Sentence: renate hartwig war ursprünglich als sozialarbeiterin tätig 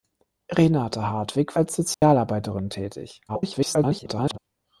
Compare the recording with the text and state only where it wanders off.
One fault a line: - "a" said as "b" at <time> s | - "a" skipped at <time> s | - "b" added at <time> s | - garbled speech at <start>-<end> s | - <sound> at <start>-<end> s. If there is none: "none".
- "war ursprünglich" skipped at 1.6 s
- dropout at 1.9-2.0 s
- garbled speech at 3.3-4.4 s